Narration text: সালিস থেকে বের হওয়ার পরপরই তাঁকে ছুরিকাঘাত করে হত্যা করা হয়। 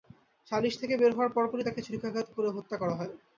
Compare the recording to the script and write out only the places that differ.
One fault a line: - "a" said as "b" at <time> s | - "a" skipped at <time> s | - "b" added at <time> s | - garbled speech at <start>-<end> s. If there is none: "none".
none